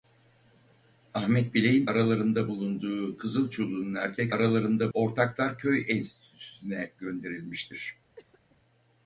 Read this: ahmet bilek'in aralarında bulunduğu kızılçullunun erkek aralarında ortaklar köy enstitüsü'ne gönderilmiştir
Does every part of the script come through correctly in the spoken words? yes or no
yes